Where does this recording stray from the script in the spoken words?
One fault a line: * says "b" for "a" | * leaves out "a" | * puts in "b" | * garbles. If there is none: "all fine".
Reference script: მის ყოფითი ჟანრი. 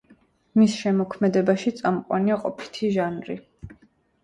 * puts in "შემოქმედებაში წამყვანია"